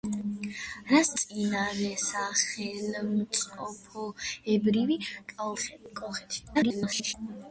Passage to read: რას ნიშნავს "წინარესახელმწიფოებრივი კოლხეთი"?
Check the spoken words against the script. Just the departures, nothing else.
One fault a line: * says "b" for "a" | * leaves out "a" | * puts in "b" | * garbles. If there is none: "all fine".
* leaves out "ნიშნავს"
* garbles